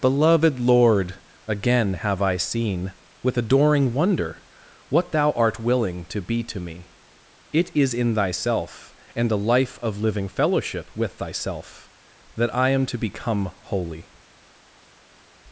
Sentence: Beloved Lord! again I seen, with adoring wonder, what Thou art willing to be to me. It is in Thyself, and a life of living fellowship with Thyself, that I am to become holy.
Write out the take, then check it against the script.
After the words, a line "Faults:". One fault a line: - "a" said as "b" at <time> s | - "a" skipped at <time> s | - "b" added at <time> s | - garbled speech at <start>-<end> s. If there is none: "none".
Beloved Lord! again have I seen, with adoring wonder, what Thou art willing to be to me. It is in Thyself, and a life of living fellowship with Thyself, that I am to become holy.
Faults:
- "have" added at 1.9 s